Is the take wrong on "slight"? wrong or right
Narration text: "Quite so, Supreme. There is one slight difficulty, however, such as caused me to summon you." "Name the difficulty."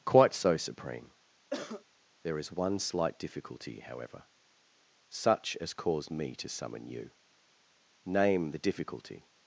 right